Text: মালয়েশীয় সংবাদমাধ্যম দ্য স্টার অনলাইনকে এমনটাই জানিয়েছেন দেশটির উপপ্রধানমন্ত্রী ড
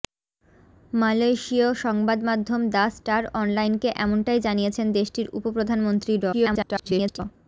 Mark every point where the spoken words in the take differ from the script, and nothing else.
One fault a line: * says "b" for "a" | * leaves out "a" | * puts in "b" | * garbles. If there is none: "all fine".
* garbles